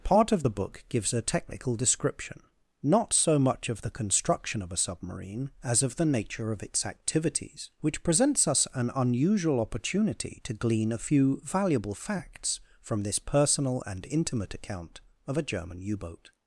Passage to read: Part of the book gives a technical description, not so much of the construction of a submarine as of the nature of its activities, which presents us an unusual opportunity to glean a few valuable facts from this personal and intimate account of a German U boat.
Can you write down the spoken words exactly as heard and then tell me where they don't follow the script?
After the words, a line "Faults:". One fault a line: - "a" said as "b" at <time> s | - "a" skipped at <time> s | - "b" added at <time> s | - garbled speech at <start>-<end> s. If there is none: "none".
Part of the book gives a technical description, not so much of the construction of a submarine as of the nature of its activities, which presents us an unusual opportunity to glean a few valuable facts from this personal and intimate account of a German U boat.
Faults:
none